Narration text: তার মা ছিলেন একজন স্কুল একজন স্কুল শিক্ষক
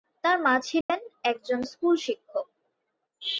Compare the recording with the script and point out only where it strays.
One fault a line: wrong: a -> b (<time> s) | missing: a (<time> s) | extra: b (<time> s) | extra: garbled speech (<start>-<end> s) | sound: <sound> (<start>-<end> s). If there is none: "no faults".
sound: dropout (0.8-0.9 s)
missing: একজন স্কুল (1.9 s)